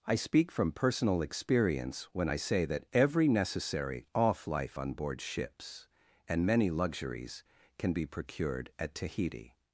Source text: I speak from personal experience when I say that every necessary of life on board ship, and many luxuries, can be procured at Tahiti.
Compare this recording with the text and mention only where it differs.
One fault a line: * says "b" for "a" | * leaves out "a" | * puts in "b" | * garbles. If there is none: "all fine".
* says "off" for "of"
* says "ships" for "ship"